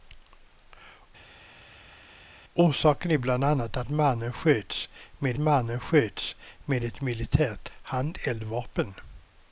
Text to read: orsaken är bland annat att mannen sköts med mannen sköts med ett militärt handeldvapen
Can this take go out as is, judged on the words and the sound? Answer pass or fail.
pass